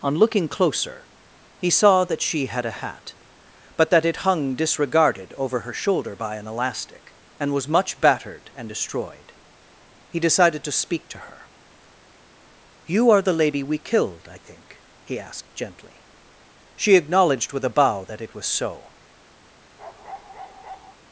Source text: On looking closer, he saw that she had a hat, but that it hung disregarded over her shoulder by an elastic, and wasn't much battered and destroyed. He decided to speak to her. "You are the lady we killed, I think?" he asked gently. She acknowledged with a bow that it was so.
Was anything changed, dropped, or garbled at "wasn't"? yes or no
yes